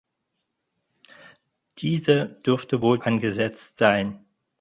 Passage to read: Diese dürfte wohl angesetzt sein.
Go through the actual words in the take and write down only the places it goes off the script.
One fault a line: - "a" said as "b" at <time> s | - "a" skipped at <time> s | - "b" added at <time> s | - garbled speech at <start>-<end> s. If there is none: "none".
none